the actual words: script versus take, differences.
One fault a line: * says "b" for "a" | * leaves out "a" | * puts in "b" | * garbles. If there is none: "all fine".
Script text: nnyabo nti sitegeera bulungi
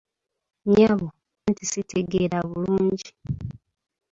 all fine